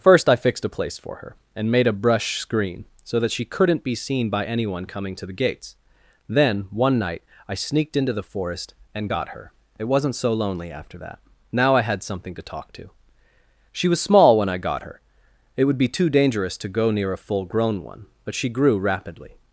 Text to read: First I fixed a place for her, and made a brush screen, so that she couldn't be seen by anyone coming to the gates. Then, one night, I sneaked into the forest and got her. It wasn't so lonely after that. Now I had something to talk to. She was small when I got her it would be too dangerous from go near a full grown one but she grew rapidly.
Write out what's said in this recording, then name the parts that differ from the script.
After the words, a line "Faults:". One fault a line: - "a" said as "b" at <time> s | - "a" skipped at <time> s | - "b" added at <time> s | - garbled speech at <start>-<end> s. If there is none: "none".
First I fixed a place for her, and made a brush screen, so that she couldn't be seen by anyone coming to the gates. Then, one night, I sneaked into the forest and got her. It wasn't so lonely after that. Now I had something to talk to. She was small when I got her it would be too dangerous to go near a full grown one but she grew rapidly.
Faults:
- "from" said as "to" at 16.6 s